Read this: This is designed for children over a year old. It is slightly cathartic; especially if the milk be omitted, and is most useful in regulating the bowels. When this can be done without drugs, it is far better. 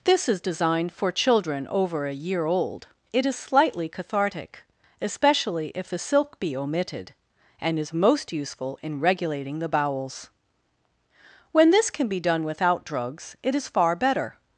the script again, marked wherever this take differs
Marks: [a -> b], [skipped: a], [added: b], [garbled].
This is designed for children over a year old. It is slightly cathartic; especially if the [milk -> silk] be omitted, and is most useful in regulating the bowels. When this can be done without drugs, it is far better.